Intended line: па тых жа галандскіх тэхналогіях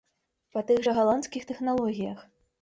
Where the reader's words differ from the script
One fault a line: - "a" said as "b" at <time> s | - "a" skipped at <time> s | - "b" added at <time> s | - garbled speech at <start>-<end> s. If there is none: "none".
none